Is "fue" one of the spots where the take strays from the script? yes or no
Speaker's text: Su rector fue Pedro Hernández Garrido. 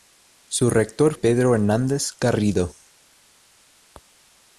yes